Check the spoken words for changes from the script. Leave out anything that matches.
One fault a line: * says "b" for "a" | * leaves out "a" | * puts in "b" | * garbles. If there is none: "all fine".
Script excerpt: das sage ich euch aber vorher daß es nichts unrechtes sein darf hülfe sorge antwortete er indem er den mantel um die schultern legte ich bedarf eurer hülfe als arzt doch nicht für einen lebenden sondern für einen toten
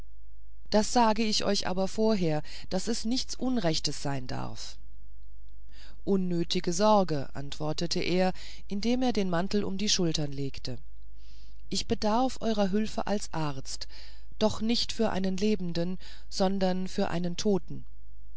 * says "unnötige" for "hülfe"